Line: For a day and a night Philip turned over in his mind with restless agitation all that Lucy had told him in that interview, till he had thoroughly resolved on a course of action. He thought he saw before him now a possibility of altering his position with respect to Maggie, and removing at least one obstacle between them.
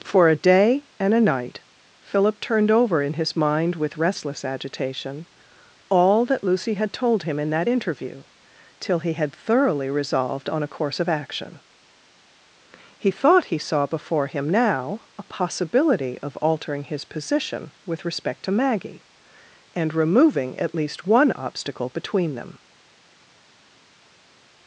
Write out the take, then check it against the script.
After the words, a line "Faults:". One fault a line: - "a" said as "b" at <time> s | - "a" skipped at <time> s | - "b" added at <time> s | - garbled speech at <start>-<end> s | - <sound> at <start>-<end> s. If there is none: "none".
For a day and a night Philip turned over in his mind with restless agitation all that Lucy had told him in that interview, till he had thoroughly resolved on a course of action. He thought he saw before him now a possibility of altering his position with respect to Maggie, and removing at least one obstacle between them.
Faults:
none